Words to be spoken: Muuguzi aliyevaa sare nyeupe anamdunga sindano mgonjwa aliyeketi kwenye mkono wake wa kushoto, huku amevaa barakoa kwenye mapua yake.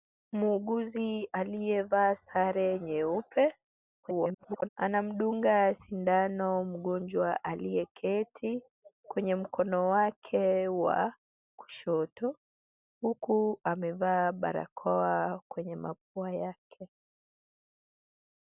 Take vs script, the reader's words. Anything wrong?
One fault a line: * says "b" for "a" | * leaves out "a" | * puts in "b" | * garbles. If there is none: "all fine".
* garbles